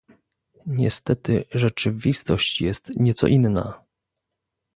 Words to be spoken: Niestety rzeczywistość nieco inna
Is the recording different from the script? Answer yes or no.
yes